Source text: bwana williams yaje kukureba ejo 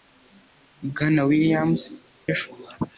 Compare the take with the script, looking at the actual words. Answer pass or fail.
fail